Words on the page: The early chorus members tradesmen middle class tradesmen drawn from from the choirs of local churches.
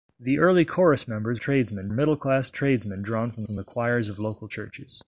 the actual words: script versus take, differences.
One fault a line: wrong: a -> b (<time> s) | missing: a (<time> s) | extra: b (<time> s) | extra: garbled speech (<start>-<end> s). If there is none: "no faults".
no faults